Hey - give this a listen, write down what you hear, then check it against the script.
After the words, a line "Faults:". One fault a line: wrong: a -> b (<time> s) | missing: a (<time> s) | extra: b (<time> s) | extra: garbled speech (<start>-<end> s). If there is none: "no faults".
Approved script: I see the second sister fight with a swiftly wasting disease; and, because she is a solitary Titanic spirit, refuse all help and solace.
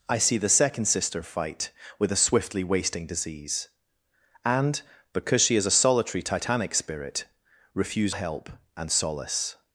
I see the second sister fight with a swiftly wasting disease; and, because she is a solitary Titanic spirit, refuse help and solace.
Faults:
missing: all (8.2 s)